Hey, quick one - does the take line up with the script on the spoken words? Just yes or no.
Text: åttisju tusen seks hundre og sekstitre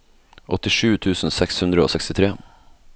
yes